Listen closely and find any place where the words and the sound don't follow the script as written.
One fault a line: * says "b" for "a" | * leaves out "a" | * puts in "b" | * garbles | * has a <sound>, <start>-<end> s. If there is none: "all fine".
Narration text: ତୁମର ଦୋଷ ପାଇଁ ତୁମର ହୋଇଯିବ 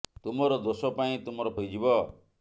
all fine